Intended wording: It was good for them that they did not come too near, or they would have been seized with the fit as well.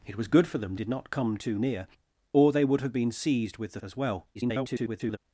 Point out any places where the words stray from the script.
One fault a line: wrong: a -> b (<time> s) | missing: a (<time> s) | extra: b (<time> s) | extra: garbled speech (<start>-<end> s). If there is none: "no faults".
missing: that they (0.8 s)
missing: fit (3.8 s)
extra: garbled speech (4.3-5.2 s)